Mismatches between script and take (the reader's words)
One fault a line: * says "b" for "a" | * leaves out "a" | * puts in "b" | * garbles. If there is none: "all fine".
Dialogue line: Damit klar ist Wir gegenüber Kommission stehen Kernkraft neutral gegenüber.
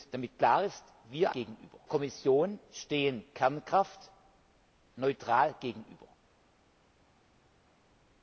all fine